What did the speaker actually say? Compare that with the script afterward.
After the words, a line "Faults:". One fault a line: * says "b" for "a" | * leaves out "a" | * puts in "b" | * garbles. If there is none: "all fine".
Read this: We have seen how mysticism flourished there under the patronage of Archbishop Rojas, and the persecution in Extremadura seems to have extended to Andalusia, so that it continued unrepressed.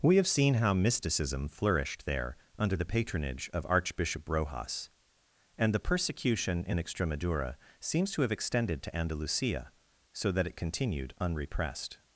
We have seen how mysticism flourished there under the patronage of Archbishop Rojas, and the persecution in Extremadura seems to have extended to Andalusia, so that it continued unrepressed.
Faults:
all fine